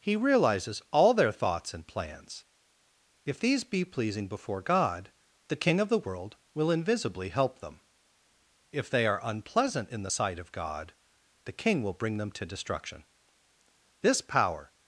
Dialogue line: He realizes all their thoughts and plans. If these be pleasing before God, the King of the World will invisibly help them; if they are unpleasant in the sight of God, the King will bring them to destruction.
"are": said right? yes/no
yes